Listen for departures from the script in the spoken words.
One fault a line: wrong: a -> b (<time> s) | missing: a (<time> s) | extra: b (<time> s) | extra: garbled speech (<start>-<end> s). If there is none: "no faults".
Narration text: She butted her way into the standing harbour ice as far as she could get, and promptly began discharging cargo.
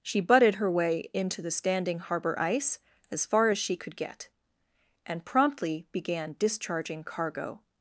no faults